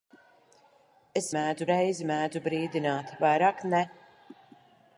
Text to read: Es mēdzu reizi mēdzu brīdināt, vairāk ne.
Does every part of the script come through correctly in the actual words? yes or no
yes